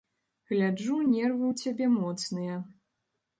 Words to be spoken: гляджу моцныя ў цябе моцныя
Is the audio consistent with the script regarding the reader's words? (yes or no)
no